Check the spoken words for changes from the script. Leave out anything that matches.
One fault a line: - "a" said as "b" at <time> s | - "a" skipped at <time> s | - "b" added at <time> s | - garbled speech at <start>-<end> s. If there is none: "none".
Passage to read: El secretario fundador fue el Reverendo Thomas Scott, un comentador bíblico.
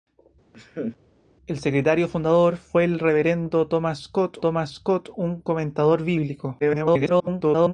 - "Thomas Scott" added at 4.4 s
- garbled speech at 6.6-7.7 s